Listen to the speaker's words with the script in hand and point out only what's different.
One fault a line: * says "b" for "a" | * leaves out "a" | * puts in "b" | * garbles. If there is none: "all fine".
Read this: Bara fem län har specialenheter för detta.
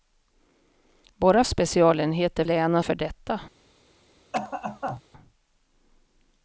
* says "specialenheter" for "fem"
* leaves out "specialenheter"